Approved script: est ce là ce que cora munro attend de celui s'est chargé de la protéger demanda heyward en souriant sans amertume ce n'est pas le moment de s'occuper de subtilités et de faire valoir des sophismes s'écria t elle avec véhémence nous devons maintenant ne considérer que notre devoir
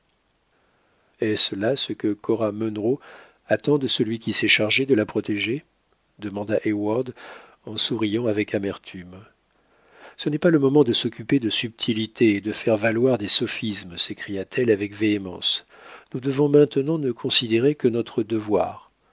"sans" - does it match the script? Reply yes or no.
no